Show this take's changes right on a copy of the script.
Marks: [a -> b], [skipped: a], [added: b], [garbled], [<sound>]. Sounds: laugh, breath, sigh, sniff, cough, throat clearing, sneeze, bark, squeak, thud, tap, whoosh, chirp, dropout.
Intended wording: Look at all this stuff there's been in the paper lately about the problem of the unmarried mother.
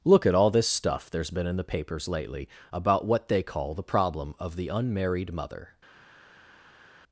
Look at all this stuff there's been in the [paper -> papers] lately about [added: what they call] the problem of the unmarried mother.